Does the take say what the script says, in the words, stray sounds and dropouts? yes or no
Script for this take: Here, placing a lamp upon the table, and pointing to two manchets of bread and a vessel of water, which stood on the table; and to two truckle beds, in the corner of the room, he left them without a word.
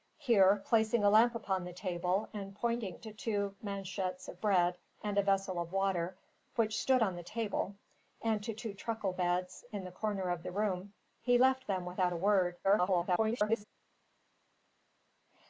no